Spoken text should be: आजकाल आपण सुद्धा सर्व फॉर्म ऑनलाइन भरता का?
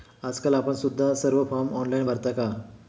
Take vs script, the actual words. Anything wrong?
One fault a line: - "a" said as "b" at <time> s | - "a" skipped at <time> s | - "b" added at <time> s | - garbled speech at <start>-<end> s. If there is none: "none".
none